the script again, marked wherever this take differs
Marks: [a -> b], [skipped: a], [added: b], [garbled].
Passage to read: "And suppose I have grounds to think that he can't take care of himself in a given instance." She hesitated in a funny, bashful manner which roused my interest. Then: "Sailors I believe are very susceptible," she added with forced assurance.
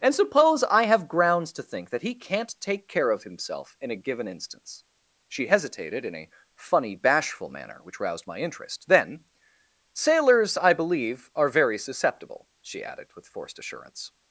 "And suppose I have grounds to think that he can't take care of himself in a given instance." She hesitated in a funny, bashful manner which roused my interest. Then: "Sailors I believe are very susceptible," she added with forced assurance.